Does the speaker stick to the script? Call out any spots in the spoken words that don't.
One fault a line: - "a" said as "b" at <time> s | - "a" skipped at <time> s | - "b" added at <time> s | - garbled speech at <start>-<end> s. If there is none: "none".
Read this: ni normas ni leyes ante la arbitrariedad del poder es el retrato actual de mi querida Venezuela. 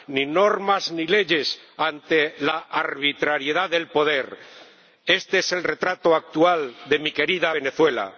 - "este" added at 5.0 s